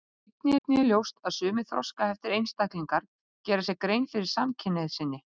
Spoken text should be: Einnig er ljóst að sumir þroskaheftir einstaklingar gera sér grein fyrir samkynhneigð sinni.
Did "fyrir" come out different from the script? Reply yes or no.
no